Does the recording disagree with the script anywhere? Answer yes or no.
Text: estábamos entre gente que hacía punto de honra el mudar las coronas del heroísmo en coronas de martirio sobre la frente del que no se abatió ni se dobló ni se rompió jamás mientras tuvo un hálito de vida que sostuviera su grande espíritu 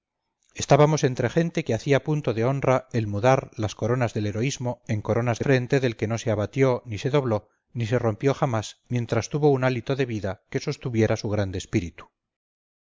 yes